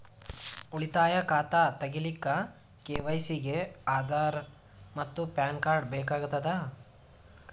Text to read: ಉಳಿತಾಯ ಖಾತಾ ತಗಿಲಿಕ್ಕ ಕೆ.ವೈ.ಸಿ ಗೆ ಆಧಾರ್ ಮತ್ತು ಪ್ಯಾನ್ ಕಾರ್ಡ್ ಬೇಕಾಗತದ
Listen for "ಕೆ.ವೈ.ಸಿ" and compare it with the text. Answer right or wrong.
right